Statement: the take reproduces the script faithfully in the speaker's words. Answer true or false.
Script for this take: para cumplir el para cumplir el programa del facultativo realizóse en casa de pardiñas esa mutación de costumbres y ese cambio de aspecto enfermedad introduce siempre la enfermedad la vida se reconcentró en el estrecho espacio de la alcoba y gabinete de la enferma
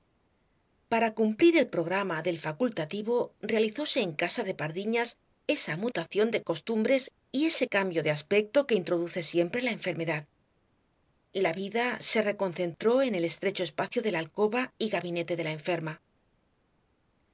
false